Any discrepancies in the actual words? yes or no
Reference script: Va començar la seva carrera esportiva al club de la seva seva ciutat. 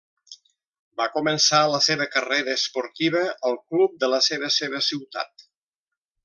no